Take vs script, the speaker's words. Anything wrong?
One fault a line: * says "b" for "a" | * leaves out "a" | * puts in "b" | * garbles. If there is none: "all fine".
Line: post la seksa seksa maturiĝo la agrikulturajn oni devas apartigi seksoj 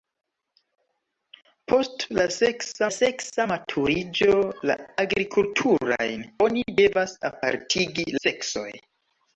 all fine